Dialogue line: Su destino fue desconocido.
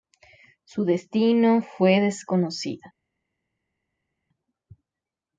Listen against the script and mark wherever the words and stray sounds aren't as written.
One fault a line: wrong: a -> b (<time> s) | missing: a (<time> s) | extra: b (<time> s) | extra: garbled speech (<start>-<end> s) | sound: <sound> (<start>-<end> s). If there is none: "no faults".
no faults